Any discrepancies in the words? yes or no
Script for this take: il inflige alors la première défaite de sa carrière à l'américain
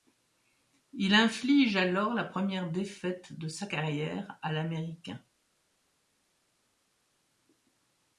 no